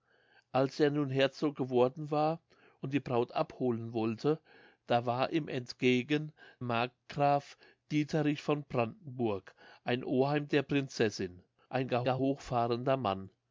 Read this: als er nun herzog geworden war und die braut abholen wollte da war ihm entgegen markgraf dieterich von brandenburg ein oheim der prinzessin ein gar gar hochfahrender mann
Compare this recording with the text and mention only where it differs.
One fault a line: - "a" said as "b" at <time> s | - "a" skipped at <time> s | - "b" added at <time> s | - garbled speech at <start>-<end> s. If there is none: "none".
none